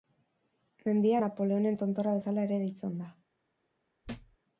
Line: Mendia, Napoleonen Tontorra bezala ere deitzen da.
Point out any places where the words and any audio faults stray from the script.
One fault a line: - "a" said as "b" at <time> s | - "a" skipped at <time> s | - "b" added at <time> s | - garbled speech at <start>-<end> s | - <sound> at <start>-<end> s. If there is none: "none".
- thud at 4.0-4.4 s